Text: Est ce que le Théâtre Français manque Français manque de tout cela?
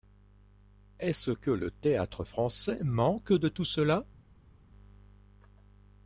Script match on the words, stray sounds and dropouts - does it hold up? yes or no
no